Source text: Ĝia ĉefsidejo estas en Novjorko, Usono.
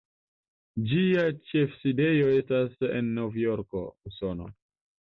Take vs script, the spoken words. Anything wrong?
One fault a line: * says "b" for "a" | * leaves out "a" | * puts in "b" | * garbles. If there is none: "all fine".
all fine